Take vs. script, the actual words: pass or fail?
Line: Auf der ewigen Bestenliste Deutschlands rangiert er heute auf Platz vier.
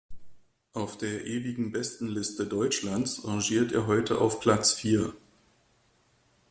pass